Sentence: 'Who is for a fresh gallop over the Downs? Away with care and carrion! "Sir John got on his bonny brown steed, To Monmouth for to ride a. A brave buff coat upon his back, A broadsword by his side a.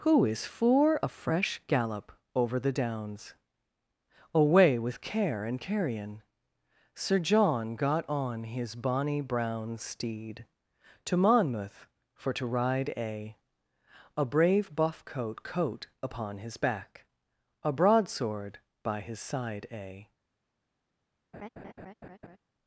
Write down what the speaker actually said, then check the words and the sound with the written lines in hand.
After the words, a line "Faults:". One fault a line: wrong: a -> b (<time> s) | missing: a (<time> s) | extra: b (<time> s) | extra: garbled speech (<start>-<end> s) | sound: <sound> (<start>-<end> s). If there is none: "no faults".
'Who is for a fresh gallop over the Downs? Away with care and carrion! "Sir John got on his bonny brown steed, To Monmouth for to ride a. A brave buff coat coat upon his back, A broadsword by his side a.
Faults:
extra: coat (15.4 s)
sound: laugh (21.3-22.4 s)